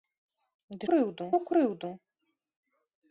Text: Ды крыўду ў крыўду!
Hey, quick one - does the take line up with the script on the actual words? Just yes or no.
yes